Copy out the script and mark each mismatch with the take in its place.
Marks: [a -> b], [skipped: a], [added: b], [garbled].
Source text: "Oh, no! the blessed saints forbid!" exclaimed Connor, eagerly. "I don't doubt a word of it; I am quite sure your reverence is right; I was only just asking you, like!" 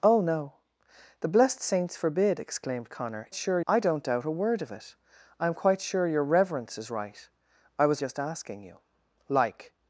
"Oh, no! the blessed saints forbid!" exclaimed Connor, [eagerly. -> sure] "I don't doubt a word of it; I am quite sure your reverence is right; I was [skipped: only] just asking you, like!"